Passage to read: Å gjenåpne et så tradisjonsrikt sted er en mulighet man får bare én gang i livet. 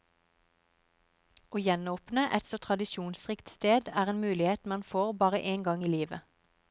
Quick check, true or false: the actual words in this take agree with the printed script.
true